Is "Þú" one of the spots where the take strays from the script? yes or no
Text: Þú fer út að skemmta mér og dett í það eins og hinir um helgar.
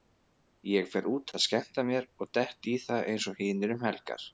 yes